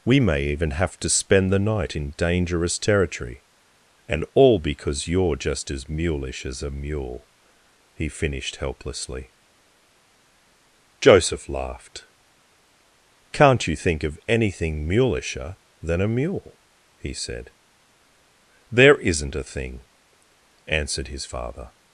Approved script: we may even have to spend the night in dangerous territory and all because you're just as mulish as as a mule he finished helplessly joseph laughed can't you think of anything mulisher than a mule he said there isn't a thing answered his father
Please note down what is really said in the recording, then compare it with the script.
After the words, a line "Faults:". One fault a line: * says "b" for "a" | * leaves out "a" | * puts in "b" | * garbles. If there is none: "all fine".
we may even have to spend the night in dangerous territory and all because you're just as mulish as a mule he finished helplessly joseph laughed can't you think of anything mulisher than a mule he said there isn't a thing answered his father
Faults:
* leaves out "as"